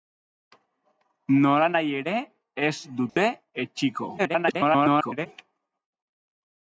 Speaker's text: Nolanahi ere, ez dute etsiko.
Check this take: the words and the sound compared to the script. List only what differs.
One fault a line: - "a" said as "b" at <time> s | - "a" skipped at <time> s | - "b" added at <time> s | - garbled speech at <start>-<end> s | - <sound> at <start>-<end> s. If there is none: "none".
- dropout at 3.1-3.2 s
- garbled speech at 4.2-5.3 s